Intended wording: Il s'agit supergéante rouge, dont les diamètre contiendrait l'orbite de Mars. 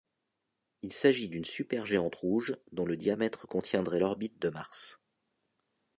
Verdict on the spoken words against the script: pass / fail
fail